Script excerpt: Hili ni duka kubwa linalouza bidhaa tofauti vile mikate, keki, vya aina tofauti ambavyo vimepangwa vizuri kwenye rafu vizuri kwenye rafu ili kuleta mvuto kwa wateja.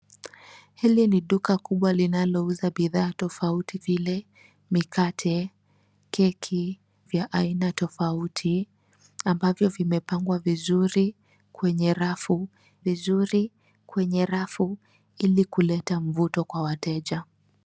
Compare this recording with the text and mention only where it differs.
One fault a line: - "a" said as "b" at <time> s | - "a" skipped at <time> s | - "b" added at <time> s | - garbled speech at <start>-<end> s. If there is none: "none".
none